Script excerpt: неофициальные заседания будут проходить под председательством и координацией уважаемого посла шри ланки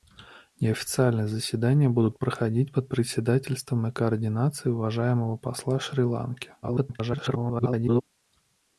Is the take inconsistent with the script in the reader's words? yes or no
yes